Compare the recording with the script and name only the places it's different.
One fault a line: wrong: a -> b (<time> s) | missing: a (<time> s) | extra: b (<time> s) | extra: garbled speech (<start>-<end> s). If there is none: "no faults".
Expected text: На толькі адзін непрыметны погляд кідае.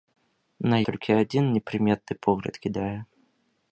no faults